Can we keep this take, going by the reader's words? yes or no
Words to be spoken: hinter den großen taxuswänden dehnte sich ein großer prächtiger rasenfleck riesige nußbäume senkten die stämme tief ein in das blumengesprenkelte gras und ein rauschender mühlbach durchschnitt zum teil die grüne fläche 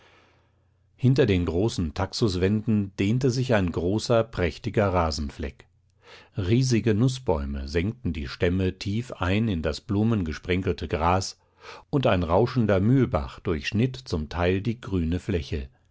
yes